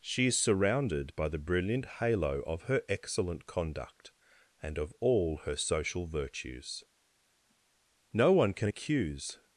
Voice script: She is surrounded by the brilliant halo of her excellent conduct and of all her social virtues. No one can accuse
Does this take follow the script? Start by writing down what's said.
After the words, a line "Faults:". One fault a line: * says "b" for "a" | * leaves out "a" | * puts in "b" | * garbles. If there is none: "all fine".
She is surrounded by the brilliant halo of her excellent conduct and of all her social virtues. No one can accuse
Faults:
all fine